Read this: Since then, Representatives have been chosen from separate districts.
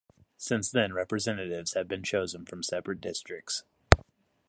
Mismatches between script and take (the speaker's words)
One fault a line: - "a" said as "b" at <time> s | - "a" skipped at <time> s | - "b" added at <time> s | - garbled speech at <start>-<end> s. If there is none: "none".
none